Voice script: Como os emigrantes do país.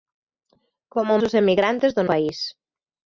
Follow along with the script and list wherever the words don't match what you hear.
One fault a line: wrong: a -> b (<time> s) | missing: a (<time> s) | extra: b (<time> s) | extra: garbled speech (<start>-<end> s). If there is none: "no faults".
no faults